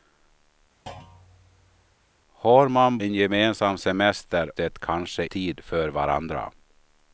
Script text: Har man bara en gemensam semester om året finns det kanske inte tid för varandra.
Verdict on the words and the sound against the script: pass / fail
fail